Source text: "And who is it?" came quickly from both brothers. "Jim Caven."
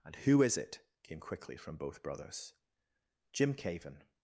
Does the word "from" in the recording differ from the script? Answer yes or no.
no